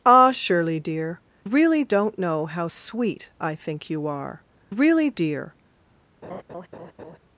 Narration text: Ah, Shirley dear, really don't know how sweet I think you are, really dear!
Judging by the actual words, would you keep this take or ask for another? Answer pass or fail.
pass